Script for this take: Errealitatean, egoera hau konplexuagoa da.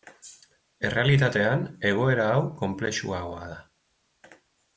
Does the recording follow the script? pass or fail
pass